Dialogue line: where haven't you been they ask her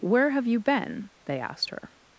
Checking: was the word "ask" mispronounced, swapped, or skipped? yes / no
yes